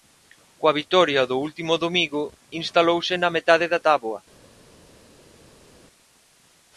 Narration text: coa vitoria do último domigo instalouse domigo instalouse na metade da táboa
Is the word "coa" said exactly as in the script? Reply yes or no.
yes